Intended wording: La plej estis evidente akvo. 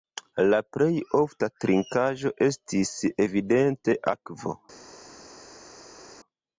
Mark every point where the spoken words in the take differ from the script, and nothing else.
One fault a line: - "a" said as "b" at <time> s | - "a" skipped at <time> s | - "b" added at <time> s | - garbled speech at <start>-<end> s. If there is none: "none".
- "ofta trinkaĵo" added at 1.2 s